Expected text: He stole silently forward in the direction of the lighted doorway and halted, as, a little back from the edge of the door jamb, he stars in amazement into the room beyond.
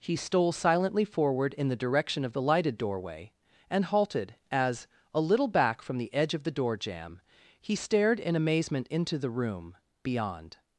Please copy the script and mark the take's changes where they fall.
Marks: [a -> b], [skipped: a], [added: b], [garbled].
He stole silently forward in the direction of the lighted doorway and halted, as, a little back from the edge of the door jamb, he [stars -> stared] in amazement into the room beyond.